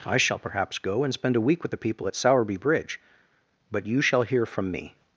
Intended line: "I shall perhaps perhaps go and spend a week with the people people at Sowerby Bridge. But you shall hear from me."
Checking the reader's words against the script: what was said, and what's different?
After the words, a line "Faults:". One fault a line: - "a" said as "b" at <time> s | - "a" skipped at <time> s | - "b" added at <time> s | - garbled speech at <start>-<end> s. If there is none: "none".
"I shall perhaps go and spend a week with the people at Sowerby Bridge. But you shall hear from me."
Faults:
- "perhaps" skipped at 0.8 s
- "people" skipped at 2.1 s